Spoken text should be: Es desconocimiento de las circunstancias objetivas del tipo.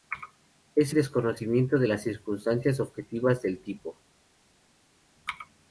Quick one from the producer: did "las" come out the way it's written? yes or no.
yes